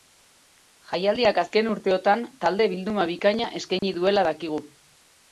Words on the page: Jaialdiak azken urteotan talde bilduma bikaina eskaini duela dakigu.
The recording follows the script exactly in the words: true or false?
true